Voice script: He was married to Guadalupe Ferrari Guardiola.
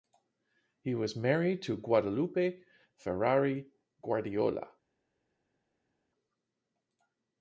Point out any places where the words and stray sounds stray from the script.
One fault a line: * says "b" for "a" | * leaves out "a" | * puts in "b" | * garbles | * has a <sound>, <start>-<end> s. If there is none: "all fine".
all fine